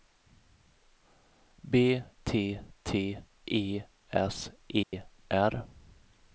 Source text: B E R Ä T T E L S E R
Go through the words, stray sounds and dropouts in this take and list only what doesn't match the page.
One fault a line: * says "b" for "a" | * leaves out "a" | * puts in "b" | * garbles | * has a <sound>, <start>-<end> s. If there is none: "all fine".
* leaves out "E R Ä"
* leaves out "L"
* has a dropout, 4.8-4.9 s